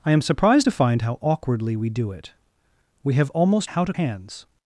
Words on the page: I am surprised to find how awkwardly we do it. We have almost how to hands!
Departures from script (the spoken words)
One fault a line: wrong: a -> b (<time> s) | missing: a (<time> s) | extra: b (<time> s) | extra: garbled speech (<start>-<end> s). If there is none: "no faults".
no faults